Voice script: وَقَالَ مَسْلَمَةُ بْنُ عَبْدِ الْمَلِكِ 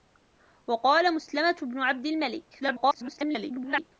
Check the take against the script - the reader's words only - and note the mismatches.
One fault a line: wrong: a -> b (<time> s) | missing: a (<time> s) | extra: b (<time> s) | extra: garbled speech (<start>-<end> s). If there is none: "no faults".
extra: garbled speech (2.6-3.9 s)